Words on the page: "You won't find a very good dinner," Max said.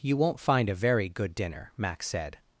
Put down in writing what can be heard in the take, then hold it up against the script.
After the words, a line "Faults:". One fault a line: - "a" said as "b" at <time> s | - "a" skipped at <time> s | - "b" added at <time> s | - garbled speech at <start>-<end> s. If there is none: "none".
"You won't find a very good dinner," Max said.
Faults:
none